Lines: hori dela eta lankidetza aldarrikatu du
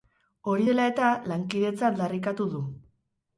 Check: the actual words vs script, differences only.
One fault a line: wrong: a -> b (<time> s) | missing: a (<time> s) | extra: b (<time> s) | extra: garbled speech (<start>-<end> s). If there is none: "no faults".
no faults